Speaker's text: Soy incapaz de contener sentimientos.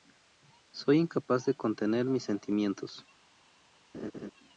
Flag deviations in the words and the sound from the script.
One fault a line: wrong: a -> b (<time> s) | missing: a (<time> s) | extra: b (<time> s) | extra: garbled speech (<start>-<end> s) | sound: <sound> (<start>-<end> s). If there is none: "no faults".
extra: mis (2.0 s)
sound: laugh (3.9-4.3 s)